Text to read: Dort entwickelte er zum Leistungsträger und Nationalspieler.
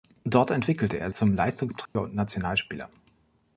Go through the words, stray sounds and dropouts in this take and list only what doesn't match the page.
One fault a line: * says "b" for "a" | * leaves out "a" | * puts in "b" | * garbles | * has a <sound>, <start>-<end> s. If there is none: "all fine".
* has a dropout, 1.9-2.0 s